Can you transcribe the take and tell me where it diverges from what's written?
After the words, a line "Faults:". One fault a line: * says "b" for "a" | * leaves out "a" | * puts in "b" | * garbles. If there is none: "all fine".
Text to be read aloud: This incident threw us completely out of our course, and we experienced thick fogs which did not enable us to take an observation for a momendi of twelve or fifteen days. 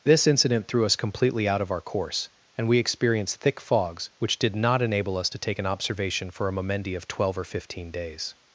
This incident threw us completely out of our course, and we experienced thick fogs which did not enable us to take an observation for a momendi of twelve or fifteen days.
Faults:
all fine